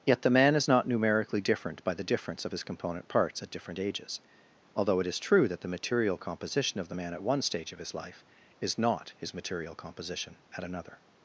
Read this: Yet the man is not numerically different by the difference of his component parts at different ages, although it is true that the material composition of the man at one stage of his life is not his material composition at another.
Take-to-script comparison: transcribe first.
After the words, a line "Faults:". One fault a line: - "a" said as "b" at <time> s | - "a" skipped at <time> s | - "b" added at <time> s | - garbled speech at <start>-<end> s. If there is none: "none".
Yet the man is not numerically different by the difference of his component parts at different ages, although it is true that the material composition of the man at one stage of his life is not his material composition at another.
Faults:
none